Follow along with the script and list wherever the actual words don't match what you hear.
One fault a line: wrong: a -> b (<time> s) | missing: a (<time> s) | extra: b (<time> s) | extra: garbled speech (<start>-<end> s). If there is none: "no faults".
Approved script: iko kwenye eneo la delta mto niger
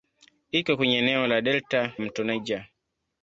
no faults